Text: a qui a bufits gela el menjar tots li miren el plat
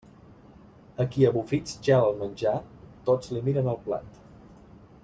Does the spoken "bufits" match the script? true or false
true